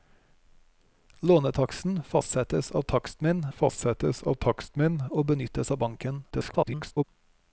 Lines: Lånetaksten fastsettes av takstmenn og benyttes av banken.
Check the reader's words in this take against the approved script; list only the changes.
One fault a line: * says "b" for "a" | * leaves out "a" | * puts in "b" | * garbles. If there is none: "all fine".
* puts in "fastsettes av takstmenn"
* garbles